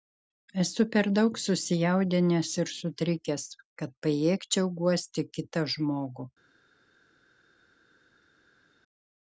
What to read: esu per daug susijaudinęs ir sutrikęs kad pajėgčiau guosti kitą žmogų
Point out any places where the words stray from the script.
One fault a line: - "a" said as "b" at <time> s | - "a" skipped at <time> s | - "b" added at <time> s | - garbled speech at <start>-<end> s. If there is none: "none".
none